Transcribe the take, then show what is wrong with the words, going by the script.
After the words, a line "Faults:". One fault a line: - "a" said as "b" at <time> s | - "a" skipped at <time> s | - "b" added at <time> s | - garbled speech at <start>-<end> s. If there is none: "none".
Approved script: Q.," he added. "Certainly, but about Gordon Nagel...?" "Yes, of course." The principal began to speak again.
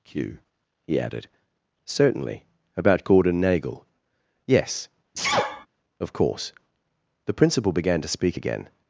Q.," he added. "Certainly, about Gordon Nagel...?" "Yes, of course." The principal began to speak again.
Faults:
- "but" skipped at 2.4 s